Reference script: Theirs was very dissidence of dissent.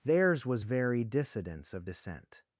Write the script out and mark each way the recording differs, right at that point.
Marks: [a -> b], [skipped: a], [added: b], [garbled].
Theirs was very dissidence of dissent.